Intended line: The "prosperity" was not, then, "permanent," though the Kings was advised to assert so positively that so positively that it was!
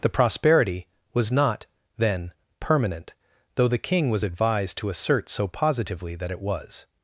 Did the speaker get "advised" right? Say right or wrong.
right